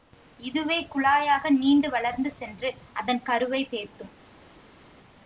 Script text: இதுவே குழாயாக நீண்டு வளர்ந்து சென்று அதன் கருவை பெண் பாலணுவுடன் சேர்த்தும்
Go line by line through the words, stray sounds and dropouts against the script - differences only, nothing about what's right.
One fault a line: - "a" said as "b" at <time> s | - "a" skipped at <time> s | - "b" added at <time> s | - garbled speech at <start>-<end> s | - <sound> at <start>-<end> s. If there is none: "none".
- "பெண் பாலணுவுடன்" skipped at 3.6 s